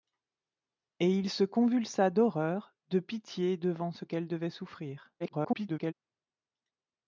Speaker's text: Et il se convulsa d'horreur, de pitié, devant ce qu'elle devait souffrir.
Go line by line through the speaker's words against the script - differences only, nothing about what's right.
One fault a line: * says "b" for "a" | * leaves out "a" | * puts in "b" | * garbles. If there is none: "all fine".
* garbles